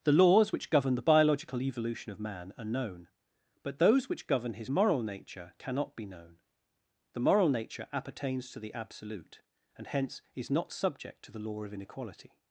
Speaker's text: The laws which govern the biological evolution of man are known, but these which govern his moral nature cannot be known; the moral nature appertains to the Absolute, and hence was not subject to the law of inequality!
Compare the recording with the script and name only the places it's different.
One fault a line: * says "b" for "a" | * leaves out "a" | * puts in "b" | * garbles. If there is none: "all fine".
* says "those" for "these"
* says "is" for "was"